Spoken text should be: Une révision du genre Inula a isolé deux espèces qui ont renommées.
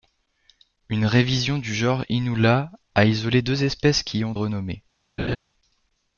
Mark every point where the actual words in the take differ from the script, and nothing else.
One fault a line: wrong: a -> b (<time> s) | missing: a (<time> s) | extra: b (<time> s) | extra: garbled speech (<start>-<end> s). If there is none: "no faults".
no faults